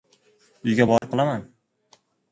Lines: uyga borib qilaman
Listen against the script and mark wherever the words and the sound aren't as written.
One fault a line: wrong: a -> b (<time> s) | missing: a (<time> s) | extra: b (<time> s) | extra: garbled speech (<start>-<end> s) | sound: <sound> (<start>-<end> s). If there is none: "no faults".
sound: dropout (1.0-1.0 s)